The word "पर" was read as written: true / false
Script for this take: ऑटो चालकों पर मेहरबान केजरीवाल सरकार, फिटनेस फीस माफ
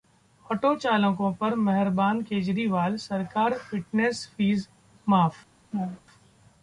true